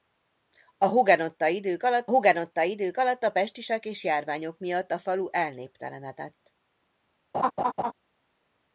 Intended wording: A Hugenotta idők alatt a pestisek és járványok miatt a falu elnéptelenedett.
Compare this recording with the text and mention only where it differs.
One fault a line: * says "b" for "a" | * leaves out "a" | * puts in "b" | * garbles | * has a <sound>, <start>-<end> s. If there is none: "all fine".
* puts in "Hugenotta idők alatt"
* has a laugh, 7.3-7.9 s